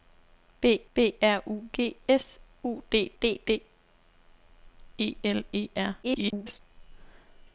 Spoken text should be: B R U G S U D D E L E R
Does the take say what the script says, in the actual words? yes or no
no